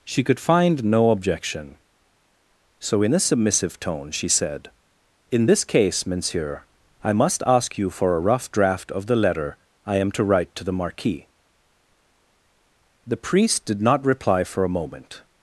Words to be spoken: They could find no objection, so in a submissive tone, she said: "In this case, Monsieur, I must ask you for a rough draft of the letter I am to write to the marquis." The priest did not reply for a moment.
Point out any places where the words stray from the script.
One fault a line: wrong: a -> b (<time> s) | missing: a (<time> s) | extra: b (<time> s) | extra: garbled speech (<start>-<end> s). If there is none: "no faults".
wrong: They -> She (0.0 s)